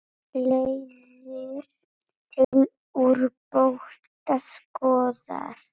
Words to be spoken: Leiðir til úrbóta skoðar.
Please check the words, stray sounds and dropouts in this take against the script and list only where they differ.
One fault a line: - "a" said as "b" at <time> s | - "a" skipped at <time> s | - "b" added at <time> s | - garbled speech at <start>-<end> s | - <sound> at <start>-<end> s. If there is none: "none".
- dropout at 2.4-2.5 s